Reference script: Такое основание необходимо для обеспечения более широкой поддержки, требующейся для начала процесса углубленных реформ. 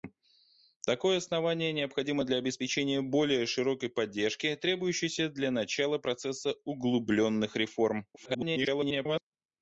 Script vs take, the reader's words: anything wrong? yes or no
yes